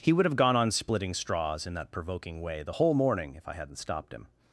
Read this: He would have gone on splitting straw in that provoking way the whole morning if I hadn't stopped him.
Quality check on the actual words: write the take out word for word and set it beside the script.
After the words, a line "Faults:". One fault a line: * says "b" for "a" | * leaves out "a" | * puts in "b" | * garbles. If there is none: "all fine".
He would have gone on splitting straws in that provoking way the whole morning if I hadn't stopped him.
Faults:
* says "straws" for "straw"